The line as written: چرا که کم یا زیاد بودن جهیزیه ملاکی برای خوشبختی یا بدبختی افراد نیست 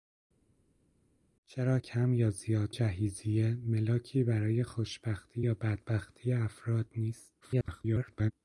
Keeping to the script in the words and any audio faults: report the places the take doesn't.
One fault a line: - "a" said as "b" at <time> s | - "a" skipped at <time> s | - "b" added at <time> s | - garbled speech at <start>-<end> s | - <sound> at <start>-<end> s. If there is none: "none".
- "که" skipped at 1.8 s
- "بودن" skipped at 2.7 s
- garbled speech at 7.4-8.3 s